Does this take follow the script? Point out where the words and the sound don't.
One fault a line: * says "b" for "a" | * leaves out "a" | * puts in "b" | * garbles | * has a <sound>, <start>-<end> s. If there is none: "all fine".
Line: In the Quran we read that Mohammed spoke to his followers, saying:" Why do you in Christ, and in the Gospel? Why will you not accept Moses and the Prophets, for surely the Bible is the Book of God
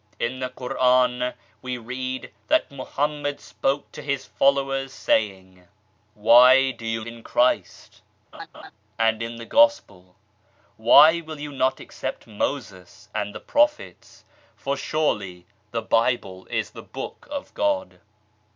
* has a laugh, 8.3-8.7 s